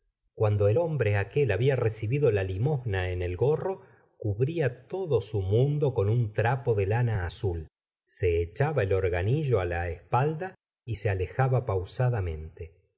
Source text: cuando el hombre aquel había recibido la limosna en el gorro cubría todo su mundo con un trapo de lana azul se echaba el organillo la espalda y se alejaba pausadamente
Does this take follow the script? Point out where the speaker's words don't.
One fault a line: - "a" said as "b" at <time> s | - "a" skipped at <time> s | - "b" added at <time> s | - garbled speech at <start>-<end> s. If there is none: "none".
none